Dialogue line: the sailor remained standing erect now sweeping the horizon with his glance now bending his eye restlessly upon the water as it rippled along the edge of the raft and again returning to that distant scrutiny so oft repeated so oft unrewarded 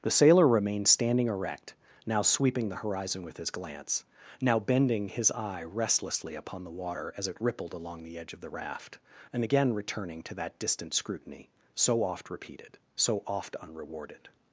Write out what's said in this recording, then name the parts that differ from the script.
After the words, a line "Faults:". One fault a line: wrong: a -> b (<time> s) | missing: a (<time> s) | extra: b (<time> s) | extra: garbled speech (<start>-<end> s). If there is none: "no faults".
the sailor remained standing erect now sweeping the horizon with his glance now bending his eye restlessly upon the water as it rippled along the edge of the raft and again returning to that distant scrutiny so oft repeated so oft unrewarded
Faults:
no faults